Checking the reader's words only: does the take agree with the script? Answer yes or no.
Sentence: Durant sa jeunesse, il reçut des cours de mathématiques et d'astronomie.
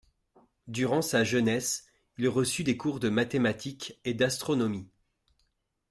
yes